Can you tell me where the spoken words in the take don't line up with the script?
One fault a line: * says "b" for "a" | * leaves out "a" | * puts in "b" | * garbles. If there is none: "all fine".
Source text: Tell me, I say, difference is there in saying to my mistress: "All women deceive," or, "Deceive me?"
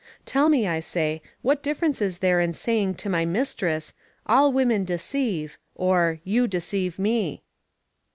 * puts in "what"
* puts in "You"